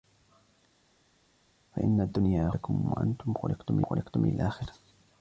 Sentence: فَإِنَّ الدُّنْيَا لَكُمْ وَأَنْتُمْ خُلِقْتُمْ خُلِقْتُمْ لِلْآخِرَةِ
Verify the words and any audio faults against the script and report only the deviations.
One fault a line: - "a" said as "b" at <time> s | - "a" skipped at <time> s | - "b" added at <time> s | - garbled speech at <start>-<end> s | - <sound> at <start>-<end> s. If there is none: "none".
none